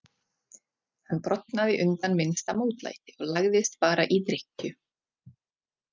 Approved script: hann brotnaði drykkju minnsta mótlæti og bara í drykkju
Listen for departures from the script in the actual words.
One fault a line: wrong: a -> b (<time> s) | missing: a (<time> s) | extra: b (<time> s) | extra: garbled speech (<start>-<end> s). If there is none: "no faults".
wrong: drykkju -> undan (1.8 s)
extra: lagðist (3.4 s)